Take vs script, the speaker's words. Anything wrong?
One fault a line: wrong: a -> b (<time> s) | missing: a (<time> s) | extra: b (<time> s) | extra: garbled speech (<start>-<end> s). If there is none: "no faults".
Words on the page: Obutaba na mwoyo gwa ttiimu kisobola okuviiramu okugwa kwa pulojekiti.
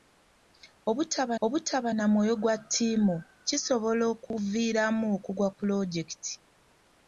extra: obutaba (1.4 s)
missing: kwa (5.5 s)